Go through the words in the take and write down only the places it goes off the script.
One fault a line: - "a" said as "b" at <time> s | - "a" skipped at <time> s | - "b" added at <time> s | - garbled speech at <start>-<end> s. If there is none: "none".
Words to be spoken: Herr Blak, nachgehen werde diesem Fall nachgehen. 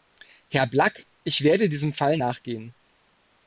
- "nachgehen" said as "ich" at 1.2 s